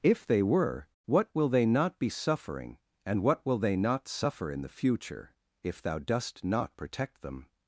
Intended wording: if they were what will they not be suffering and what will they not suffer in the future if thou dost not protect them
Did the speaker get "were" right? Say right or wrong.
right